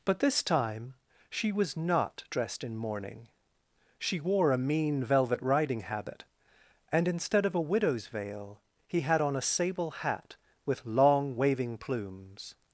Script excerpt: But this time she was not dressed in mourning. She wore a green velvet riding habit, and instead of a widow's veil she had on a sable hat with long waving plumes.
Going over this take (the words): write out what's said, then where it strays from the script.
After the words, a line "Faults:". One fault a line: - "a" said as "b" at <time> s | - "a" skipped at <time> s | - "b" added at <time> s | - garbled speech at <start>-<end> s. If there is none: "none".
But this time she was not dressed in mourning. She wore a mean velvet riding habit, and instead of a widow's veil he had on a sable hat with long waving plumes.
Faults:
- "green" said as "mean" at 4.6 s
- "she" said as "he" at 8.9 s